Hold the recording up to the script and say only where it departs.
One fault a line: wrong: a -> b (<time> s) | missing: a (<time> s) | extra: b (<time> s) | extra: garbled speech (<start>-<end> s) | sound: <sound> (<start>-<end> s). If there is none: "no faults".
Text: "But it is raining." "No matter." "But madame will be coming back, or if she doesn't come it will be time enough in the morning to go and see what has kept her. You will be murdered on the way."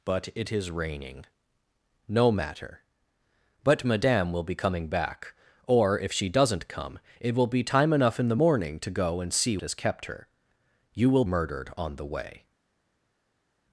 missing: what (9.6 s)
missing: be (11.2 s)